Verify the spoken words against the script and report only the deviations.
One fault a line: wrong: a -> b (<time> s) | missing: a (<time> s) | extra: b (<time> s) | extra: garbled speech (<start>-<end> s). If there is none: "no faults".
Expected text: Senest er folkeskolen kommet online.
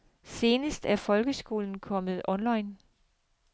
no faults